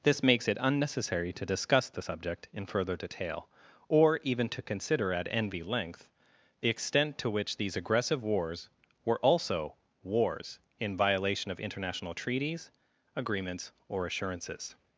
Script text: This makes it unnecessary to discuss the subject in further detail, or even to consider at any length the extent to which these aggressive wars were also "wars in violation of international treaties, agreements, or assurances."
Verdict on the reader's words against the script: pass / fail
fail